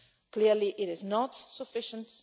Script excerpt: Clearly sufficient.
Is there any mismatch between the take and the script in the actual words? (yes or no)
yes